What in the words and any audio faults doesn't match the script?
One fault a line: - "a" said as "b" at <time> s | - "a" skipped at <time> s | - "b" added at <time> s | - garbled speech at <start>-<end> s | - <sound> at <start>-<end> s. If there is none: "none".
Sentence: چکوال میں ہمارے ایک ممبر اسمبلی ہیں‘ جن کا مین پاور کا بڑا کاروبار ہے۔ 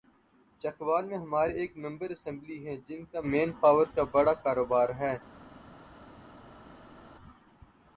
none